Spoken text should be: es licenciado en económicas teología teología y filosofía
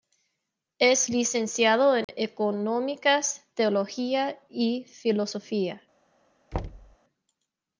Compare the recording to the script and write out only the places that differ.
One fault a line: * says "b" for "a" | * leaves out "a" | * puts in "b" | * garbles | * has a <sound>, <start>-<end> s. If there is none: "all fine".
* has a dropout, 2.0-2.1 s
* leaves out "teología"
* has a thud, 6.5-7.0 s